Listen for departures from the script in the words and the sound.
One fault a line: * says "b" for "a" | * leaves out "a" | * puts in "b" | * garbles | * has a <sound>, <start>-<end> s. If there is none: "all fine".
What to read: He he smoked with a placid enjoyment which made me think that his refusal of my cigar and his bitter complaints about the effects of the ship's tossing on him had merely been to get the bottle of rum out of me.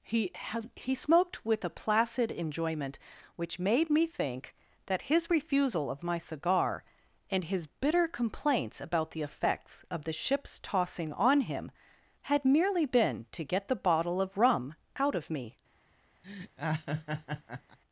* has a laugh, 16.2-17.8 s